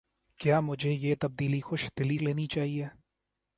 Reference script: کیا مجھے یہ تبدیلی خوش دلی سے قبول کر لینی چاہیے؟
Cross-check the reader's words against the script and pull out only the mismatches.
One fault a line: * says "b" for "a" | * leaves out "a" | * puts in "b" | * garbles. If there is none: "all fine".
* leaves out "سے قبول کر"